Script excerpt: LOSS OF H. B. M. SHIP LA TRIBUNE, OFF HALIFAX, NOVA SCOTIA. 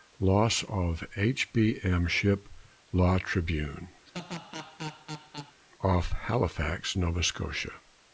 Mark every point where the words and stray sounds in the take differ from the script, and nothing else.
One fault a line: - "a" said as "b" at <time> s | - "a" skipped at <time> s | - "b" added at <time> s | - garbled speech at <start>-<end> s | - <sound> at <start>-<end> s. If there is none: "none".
- laugh at 4.0-5.6 s